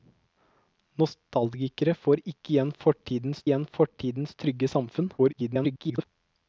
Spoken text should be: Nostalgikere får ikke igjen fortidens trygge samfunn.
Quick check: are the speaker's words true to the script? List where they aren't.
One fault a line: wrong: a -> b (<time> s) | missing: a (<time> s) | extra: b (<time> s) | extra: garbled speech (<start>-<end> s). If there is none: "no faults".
extra: igjen fortidens (3.5 s)
extra: garbled speech (5.2-6.1 s)